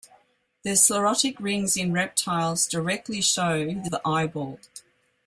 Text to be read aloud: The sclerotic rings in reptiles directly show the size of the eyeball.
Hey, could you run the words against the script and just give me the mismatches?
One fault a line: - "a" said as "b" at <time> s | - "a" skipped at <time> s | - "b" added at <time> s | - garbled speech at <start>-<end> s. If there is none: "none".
- "size of" skipped at 3.9 s